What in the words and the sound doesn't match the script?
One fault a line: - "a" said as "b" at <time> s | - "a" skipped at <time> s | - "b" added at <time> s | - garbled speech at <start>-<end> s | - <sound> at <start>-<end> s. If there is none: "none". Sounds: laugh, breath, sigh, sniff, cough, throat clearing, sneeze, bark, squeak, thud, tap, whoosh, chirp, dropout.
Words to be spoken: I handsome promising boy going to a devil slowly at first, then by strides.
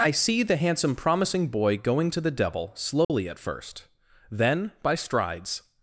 - "see the" added at 0.1 s
- "a" said as "the" at 2.2 s
- dropout at 3.0-3.1 s